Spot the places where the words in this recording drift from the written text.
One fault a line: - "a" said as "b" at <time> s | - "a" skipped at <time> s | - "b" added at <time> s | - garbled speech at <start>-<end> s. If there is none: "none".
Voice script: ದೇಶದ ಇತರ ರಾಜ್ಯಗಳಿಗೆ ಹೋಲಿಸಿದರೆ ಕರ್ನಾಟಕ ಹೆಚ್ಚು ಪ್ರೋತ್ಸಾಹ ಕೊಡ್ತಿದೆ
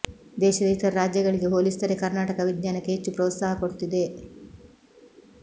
- "ವಿಜ್ಞಾನಕ್ಕೆ" added at 2.4 s